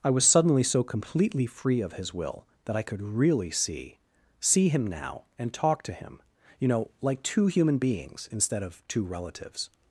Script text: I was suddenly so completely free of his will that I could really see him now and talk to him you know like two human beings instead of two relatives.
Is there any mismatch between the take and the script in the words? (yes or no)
yes